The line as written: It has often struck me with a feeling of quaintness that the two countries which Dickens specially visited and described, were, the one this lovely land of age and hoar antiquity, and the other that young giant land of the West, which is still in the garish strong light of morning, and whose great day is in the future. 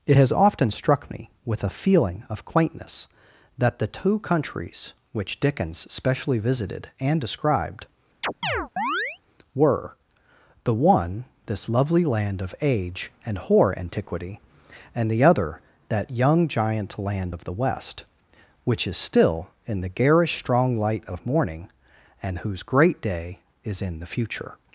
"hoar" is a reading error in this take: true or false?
false